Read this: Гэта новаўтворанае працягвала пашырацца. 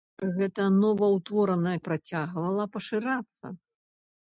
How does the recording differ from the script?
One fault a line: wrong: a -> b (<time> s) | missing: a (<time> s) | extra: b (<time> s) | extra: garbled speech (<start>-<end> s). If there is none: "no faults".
no faults